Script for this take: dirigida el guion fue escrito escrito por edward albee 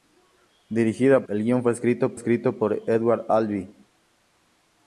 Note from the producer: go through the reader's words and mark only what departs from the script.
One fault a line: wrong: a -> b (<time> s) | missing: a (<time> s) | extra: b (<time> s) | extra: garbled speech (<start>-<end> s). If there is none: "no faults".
no faults